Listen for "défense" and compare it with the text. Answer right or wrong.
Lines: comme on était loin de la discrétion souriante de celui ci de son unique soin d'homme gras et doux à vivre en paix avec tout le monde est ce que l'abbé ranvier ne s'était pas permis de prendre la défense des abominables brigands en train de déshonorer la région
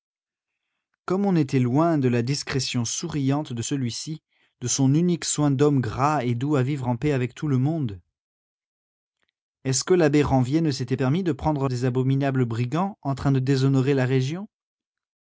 wrong